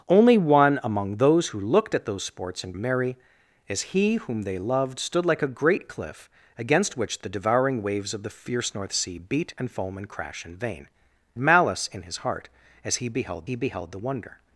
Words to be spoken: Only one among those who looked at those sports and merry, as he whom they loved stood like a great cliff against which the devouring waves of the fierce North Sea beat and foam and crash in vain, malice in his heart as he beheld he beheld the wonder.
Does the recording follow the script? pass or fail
pass